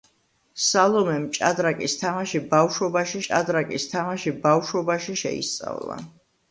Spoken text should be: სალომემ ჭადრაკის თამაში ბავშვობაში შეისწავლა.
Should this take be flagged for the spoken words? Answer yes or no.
yes